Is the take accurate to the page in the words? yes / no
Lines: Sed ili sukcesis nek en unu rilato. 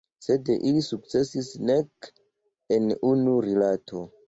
yes